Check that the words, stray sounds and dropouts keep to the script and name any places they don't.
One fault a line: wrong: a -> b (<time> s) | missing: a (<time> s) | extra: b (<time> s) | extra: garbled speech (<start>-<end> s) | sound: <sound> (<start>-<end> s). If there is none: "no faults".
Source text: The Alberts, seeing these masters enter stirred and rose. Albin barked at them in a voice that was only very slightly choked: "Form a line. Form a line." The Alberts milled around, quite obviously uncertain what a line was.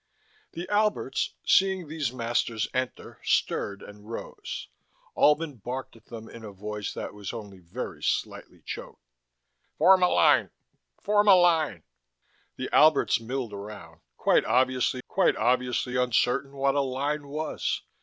extra: quite obviously (15.1 s)